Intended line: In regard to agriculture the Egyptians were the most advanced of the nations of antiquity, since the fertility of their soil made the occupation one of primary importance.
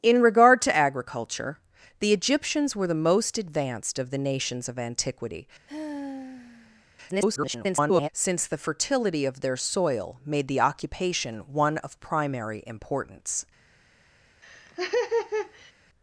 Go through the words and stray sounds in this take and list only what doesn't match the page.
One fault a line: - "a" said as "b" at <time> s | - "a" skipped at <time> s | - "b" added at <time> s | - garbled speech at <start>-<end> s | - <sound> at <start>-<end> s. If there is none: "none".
- sigh at 5.7-6.9 s
- garbled speech at 7.1-8.1 s
- laugh at 14.4-15.7 s